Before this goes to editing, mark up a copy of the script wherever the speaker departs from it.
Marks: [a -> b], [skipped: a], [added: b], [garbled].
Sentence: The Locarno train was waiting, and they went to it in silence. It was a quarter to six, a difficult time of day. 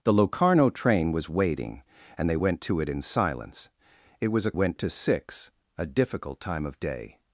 The Locarno train was waiting, and they went to it in silence. It was a [quarter -> went] to six, a difficult time of day.